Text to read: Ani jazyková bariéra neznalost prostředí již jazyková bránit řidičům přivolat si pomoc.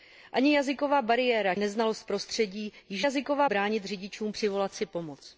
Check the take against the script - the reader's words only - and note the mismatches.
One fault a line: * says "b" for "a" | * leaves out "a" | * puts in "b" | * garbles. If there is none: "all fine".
all fine